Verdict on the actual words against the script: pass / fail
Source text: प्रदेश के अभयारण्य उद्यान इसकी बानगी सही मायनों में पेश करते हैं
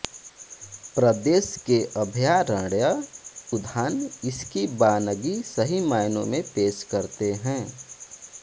pass